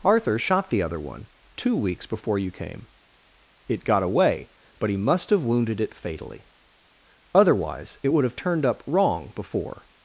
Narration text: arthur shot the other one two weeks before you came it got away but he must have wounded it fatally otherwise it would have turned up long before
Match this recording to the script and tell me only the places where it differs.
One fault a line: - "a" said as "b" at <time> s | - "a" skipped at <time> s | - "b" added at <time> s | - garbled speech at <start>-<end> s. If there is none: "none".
- "long" said as "wrong" at 8.9 s